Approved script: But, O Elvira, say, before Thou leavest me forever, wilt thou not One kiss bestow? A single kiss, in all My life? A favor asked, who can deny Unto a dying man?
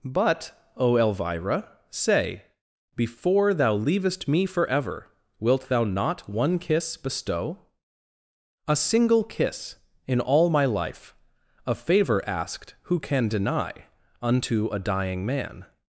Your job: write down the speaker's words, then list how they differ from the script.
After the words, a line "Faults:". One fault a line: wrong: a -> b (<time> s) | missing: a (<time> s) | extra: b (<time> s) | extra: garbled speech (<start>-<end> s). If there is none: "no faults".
But, O Elvira, say, before Thou leavest me forever, wilt thou not One kiss bestow? A single kiss, in all My life? A favor asked, who can deny Unto a dying man?
Faults:
no faults